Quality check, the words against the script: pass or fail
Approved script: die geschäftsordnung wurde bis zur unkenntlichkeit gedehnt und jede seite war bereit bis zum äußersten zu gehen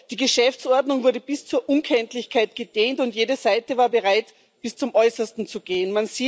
pass